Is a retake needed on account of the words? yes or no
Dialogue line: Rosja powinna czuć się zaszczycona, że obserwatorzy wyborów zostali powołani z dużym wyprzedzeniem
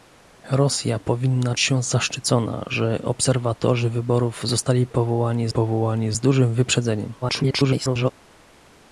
yes